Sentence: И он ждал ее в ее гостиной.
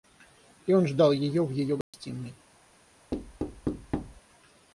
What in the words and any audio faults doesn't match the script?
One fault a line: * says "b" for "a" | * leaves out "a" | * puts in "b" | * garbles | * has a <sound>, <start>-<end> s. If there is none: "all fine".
* has a dropout, 1.8-1.9 s
* has a thud, 3.1-4.2 s